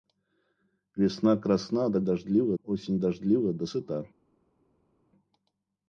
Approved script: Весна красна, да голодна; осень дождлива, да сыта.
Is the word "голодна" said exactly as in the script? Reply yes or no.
no